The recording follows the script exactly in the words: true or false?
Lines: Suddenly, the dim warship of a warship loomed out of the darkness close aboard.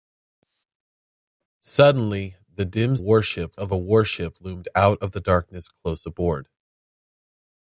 true